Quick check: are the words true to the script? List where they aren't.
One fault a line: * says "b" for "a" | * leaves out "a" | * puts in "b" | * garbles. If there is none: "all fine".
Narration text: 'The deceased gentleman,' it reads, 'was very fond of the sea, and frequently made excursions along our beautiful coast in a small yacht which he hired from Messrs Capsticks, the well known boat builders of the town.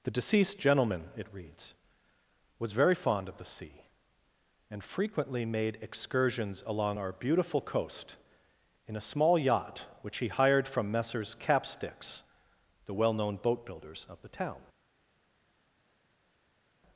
all fine